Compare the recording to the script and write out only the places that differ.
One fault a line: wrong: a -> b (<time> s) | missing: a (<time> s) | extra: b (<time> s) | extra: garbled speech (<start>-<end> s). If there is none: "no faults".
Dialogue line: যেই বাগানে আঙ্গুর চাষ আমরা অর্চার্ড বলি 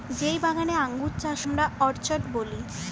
no faults